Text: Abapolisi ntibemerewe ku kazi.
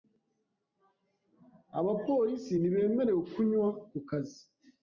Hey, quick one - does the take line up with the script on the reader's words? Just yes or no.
no